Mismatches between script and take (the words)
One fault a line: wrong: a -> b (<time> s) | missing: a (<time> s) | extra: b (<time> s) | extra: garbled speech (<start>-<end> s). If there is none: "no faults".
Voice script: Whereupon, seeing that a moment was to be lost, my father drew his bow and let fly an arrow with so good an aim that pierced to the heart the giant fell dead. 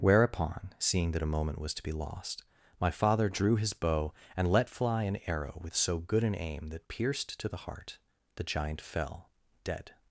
no faults